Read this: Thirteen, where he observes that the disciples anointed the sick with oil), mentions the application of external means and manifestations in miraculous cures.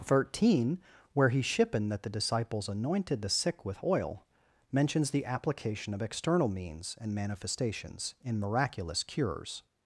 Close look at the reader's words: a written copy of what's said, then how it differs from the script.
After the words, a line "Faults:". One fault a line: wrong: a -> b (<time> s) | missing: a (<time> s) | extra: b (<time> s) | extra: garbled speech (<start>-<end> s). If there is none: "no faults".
Thirteen, where he shippen that the disciples anointed the sick with oil), mentions the application of external means and manifestations in miraculous cures.
Faults:
wrong: observes -> shippen (1.4 s)